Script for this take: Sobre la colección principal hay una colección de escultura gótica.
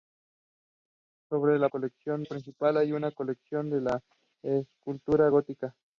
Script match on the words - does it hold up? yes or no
yes